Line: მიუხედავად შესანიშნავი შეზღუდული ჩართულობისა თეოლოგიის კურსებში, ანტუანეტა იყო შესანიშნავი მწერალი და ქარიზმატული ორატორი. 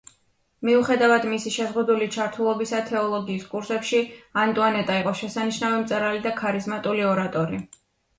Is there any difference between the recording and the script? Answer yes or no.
yes